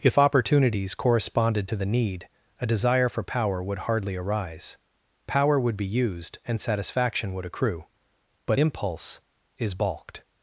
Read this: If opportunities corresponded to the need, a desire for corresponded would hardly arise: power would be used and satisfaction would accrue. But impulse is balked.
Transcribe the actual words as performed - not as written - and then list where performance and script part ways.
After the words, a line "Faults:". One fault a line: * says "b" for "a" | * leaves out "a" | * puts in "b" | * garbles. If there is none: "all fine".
If opportunities corresponded to the need, a desire for power would hardly arise: power would be used and satisfaction would accrue. But impulse is balked.
Faults:
* says "power" for "corresponded"